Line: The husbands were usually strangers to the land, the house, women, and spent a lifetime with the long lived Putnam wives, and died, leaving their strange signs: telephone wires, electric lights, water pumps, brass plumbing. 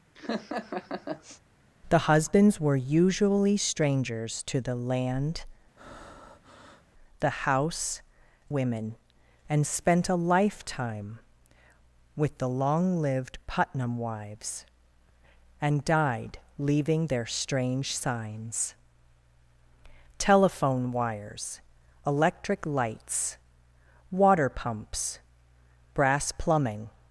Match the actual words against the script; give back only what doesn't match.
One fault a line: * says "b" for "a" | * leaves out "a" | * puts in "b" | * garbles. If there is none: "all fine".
all fine